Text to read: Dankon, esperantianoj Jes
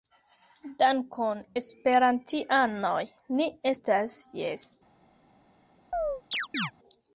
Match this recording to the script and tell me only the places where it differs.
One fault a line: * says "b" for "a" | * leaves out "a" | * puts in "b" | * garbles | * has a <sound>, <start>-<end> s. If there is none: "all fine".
* puts in "ni estas"
* has a chirp, 5.9-6.7 s